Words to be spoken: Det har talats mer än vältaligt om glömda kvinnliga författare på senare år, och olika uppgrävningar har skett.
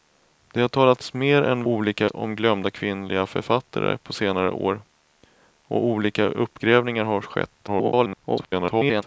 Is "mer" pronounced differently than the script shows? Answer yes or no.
no